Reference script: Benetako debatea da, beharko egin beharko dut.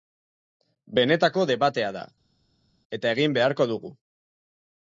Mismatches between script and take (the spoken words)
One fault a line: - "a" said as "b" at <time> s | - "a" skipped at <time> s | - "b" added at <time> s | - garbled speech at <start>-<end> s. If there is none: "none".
- "beharko" said as "eta" at 3.0 s
- "dut" said as "dugu" at 3.7 s